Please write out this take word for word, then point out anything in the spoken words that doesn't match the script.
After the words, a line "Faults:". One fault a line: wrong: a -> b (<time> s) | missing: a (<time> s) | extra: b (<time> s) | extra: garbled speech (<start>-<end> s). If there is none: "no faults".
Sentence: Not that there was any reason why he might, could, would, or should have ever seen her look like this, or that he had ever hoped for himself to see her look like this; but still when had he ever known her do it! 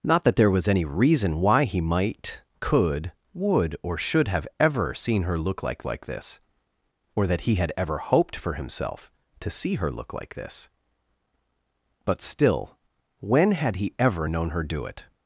Not that there was any reason why he might, could, would, or should have ever seen her look like like this, or that he had ever hoped for himself to see her look like this; but still when had he ever known her do it!
Faults:
extra: like (5.8 s)